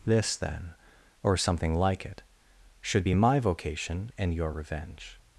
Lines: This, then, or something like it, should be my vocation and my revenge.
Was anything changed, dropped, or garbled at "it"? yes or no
no